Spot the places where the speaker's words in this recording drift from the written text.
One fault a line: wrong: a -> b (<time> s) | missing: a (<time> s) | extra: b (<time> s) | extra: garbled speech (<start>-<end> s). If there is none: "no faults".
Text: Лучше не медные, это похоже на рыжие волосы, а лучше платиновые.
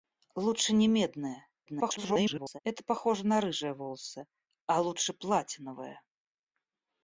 extra: garbled speech (1.7-2.6 s)